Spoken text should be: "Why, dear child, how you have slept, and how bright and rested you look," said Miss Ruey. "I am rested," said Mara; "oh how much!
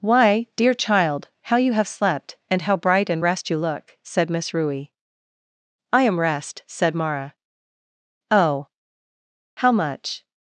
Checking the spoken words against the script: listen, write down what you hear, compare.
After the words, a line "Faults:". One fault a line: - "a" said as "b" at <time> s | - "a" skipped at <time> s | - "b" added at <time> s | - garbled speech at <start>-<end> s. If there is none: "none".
"Why, dear child, how you have slept, and how bright and rest you look," said Miss Ruey. "I am rest," said Mara; "oh how much!
Faults:
- "rested" said as "rest" at 3.2 s
- "rested" said as "rest" at 6.2 s